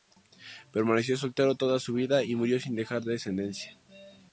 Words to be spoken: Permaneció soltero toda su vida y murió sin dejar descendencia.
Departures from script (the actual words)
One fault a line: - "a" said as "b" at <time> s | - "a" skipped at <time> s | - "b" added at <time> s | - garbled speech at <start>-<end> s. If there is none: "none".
none